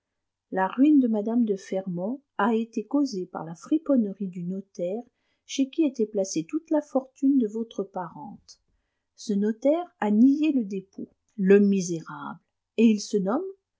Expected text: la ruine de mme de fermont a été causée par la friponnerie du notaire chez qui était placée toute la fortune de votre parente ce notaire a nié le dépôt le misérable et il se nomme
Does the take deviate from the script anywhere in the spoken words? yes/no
no